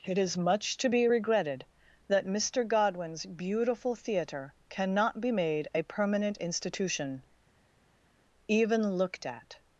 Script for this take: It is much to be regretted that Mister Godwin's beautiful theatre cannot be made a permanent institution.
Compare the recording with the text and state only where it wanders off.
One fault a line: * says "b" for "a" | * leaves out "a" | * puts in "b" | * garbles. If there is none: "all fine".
* puts in "Even looked at"